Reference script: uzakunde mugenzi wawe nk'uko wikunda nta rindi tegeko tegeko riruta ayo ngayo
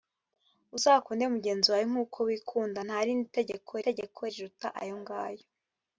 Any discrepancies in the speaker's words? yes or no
no